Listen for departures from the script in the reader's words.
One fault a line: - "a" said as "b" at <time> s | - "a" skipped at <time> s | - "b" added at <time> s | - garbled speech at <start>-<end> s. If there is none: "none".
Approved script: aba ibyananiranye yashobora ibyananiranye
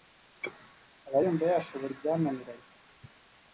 - "ibyananiranye" said as "yumva" at 1.2 s